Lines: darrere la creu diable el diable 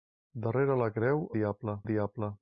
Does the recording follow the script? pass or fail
pass